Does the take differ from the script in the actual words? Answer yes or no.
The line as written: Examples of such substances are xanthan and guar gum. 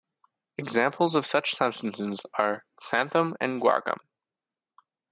no